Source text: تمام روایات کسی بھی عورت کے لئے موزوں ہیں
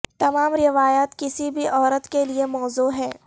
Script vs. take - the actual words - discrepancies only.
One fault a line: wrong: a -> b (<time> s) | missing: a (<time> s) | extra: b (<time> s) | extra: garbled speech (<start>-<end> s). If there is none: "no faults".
no faults